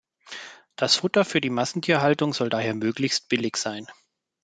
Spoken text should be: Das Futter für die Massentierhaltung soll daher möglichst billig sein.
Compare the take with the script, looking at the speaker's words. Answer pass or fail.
pass